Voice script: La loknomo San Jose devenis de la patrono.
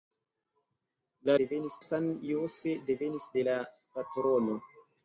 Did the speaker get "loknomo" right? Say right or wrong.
wrong